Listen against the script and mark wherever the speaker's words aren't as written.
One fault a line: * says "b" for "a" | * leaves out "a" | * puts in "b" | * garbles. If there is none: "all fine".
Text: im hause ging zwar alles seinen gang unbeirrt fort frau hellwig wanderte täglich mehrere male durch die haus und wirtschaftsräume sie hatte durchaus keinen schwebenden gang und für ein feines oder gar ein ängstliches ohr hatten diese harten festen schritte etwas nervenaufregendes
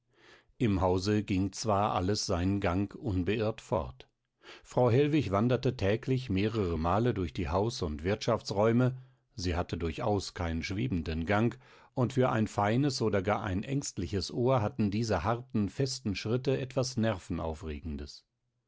all fine